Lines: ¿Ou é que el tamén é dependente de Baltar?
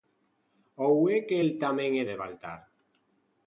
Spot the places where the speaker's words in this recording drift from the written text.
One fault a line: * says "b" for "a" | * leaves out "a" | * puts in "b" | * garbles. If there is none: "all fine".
* leaves out "dependente"